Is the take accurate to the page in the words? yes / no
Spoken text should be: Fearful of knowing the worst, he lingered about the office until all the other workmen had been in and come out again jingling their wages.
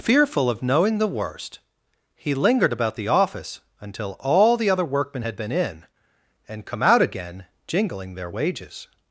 yes